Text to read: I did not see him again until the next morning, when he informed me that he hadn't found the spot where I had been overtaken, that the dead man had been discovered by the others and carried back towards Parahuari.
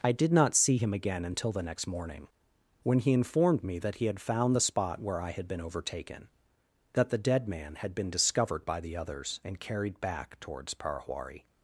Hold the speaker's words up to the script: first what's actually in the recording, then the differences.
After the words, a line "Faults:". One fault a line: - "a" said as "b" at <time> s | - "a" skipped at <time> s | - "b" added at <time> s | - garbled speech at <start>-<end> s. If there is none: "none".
I did not see him again until the next morning, when he informed me that he had found the spot where I had been overtaken, that the dead man had been discovered by the others and carried back towards Parahuari.
Faults:
- "hadn't" said as "had" at 4.0 s